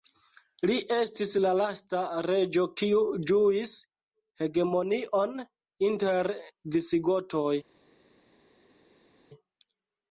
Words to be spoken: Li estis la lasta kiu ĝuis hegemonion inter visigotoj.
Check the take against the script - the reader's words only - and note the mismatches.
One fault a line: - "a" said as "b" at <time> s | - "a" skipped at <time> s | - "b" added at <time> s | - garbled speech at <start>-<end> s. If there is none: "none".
- "reĝo" added at 2.3 s